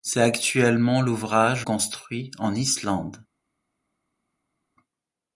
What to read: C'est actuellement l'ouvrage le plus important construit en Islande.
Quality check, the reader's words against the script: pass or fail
fail